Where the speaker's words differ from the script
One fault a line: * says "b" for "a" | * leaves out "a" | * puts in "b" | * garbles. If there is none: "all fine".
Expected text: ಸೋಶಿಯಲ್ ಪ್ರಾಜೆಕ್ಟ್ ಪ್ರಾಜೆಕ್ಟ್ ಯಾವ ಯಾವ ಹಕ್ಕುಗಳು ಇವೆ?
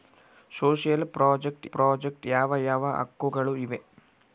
all fine